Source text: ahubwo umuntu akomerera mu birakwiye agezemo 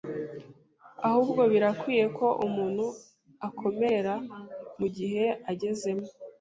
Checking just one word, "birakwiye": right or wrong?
wrong